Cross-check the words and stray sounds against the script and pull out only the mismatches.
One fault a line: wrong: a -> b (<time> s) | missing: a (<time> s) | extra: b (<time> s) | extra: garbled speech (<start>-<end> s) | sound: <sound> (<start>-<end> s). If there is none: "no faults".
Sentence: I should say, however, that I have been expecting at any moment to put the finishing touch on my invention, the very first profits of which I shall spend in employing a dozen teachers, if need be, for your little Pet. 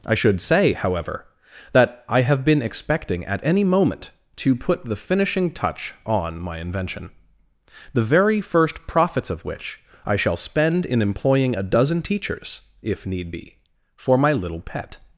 wrong: your -> my (14.2 s)